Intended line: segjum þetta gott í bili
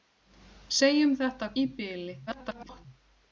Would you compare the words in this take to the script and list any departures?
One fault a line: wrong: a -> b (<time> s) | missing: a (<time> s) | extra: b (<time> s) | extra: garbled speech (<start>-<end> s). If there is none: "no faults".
missing: gott (1.5 s)
extra: garbled speech (2.3-2.9 s)